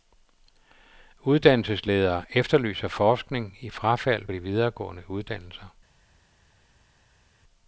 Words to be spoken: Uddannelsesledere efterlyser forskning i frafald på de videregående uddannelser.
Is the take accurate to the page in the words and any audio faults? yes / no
no